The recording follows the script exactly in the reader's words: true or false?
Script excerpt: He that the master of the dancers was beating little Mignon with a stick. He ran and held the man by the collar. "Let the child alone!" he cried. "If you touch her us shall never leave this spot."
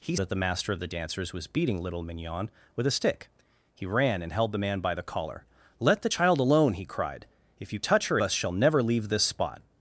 true